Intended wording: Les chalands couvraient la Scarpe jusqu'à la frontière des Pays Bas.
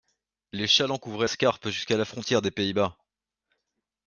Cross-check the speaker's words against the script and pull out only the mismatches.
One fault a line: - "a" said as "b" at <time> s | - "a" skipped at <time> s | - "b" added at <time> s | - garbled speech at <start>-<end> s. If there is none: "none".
- "la" skipped at 1.3 s